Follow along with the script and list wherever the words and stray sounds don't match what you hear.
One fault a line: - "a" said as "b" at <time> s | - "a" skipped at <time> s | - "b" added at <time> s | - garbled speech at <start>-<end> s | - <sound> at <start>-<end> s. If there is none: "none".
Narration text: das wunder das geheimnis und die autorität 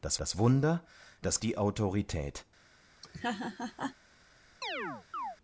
- "das" added at 0.2 s
- "geheimnis und" skipped at 1.4 s
- laugh at 3.0-4.0 s
- chirp at 4.6-5.4 s